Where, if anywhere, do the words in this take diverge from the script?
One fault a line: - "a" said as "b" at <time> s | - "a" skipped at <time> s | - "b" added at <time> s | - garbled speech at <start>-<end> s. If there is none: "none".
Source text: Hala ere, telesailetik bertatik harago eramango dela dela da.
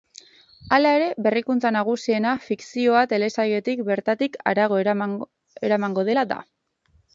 - "berrikuntza nagusiena fikzioa" added at 1.3 s
- "dela" skipped at 6.3 s